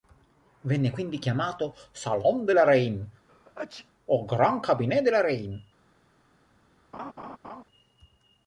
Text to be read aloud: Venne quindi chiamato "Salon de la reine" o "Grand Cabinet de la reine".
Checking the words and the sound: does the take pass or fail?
fail